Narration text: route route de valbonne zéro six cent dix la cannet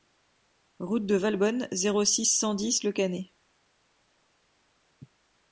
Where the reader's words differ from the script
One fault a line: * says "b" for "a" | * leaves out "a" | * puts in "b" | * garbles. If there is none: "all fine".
* leaves out "route"
* says "le" for "la"